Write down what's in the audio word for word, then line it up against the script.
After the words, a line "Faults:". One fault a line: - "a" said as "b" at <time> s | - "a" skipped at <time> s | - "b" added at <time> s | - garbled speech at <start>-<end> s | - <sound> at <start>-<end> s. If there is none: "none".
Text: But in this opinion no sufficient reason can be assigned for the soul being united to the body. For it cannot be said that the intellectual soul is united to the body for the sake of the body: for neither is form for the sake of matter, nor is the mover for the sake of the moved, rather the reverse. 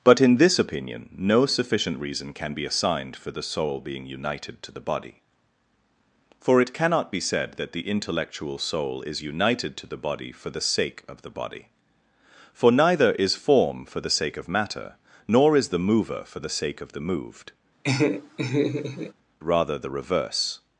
But in this opinion no sufficient reason can be assigned for the soul being united to the body. For it cannot be said that the intellectual soul is united to the body for the sake of the body: for neither is form for the sake of matter, nor is the mover for the sake of the moved, rather the reverse.
Faults:
- laugh at 17.8-19.1 s